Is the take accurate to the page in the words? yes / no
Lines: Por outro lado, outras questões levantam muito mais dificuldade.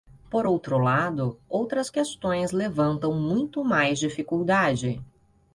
yes